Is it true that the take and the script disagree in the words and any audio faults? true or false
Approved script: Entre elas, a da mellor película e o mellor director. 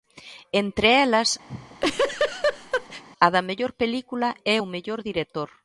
true